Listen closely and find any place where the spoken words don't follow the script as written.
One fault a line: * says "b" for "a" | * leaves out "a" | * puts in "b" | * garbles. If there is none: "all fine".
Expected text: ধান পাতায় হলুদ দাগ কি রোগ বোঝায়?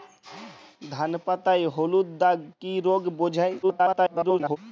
* garbles